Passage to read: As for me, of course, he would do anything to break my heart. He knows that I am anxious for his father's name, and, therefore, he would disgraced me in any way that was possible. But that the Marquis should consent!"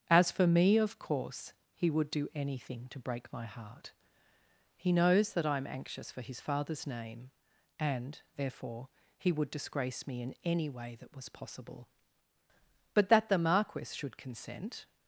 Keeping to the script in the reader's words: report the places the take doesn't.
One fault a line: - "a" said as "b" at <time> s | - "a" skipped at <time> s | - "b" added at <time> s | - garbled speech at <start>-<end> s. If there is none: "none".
- "disgraced" said as "disgrace" at 9.5 s